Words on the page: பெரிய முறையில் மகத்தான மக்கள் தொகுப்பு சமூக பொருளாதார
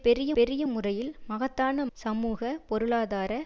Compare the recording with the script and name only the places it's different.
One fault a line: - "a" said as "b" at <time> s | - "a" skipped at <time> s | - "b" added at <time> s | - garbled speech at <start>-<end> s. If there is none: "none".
- "பெரிய" added at 0.3 s
- "மக்கள் தொகுப்பு" skipped at 1.9 s